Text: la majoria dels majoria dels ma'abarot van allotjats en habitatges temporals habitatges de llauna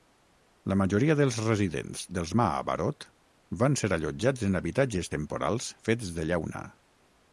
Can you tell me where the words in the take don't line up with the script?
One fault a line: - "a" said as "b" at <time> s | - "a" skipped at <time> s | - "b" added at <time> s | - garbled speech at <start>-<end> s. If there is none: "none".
- "majoria" said as "residents" at 1.5 s
- "ser" added at 3.8 s
- "habitatges" said as "fets" at 5.9 s